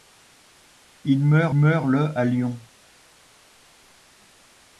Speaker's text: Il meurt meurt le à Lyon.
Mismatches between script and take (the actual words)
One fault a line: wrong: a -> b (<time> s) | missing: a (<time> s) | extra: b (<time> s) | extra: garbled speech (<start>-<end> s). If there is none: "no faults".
no faults